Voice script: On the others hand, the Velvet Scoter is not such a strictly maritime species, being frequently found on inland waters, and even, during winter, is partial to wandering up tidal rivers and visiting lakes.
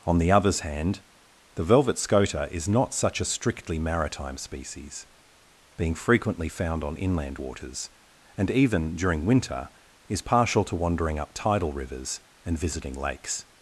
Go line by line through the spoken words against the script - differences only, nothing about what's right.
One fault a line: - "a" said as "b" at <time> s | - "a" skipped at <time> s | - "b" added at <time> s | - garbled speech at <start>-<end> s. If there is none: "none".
none